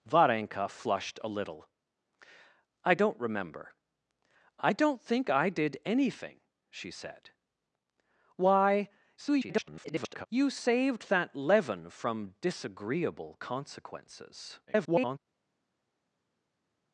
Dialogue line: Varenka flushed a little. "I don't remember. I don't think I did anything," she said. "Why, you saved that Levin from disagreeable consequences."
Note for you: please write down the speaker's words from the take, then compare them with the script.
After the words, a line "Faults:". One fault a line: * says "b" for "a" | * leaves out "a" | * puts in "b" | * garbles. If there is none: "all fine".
Varenka flushed a little. "I don't remember. I don't think I did anything," she said. "Why, [garbled] you saved that Levin from disagreeable consequences." [garbled]
Faults:
* garbles
* garbles